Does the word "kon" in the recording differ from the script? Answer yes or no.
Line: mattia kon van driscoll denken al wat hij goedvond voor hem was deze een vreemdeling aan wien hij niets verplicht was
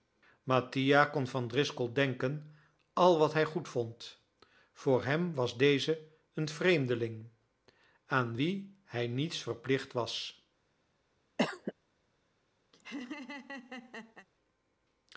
no